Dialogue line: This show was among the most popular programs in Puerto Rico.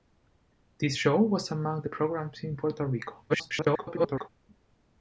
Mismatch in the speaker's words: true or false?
true